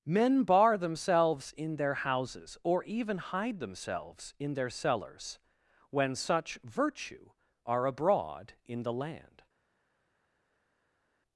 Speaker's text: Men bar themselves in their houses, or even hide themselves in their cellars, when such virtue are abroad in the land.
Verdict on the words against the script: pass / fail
pass